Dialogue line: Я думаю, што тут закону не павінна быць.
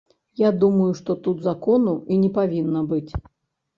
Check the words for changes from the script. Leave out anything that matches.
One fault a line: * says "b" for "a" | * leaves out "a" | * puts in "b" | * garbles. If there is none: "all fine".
* puts in "і"